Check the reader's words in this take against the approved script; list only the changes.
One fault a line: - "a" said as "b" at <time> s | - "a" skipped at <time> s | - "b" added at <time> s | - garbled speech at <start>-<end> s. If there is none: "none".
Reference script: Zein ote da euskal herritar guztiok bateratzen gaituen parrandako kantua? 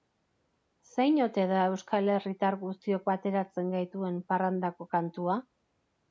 none